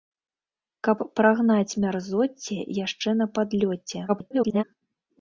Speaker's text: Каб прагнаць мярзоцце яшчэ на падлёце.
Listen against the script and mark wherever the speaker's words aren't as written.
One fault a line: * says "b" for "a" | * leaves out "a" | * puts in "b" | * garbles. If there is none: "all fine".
* garbles